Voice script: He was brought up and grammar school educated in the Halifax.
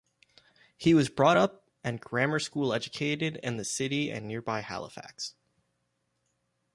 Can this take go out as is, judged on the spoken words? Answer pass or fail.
fail